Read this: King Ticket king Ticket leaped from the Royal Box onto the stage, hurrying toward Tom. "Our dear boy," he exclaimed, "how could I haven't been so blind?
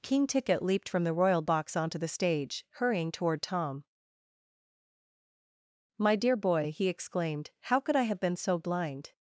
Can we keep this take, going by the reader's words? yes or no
no